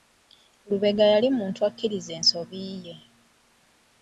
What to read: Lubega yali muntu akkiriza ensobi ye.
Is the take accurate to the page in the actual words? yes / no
yes